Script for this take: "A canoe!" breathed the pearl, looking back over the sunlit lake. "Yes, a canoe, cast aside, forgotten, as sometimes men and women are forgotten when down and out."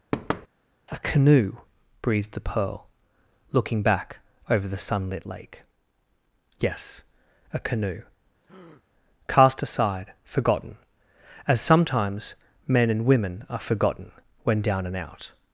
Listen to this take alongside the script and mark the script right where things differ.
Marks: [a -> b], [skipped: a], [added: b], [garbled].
"A canoe!" breathed the pearl, looking back over the sunlit lake. "Yes, a canoe, cast aside, forgotten, as sometimes men and women are forgotten when down and out."